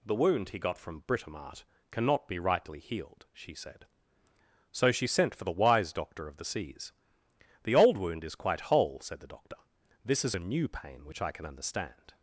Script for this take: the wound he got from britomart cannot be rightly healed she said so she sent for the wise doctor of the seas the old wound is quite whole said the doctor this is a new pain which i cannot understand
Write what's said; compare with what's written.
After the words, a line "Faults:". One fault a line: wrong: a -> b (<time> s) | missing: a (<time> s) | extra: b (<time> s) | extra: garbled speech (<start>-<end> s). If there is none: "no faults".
the wound he got from britomart cannot be rightly healed she said so she sent for the wise doctor of the seas the old wound is quite whole said the doctor this is a new pain which i can understand
Faults:
wrong: cannot -> can (11.3 s)